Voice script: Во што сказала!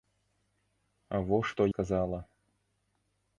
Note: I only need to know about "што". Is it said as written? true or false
true